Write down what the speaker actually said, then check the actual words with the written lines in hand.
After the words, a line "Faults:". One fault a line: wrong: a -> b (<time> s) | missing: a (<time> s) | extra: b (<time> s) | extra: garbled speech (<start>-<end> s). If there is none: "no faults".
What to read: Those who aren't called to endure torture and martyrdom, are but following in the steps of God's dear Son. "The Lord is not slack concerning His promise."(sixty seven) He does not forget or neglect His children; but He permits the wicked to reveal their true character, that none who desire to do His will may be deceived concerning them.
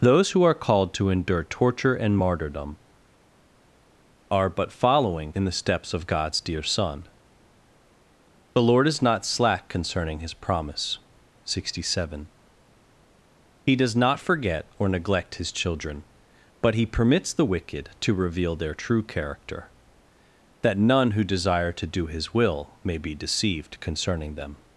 Those who are called to endure torture and martyrdom, are but following in the steps of God's dear Son. "The Lord is not slack concerning His promise."(sixty seven) He does not forget or neglect His children; but He permits the wicked to reveal their true character, that none who desire to do His will may be deceived concerning them.
Faults:
wrong: aren't -> are (0.4 s)